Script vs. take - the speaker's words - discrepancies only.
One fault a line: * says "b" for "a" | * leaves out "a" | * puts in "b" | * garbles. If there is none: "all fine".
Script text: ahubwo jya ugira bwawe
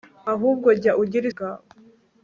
all fine